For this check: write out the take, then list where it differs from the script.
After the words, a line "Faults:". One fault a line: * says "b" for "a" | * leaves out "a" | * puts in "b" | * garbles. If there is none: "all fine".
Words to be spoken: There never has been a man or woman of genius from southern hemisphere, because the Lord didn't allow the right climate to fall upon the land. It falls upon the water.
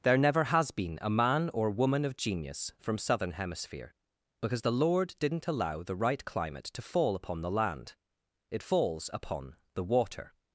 There never has been a man or woman of genius from southern hemisphere, because the Lord didn't allow the right climate to fall upon the land. It falls upon the water.
Faults:
all fine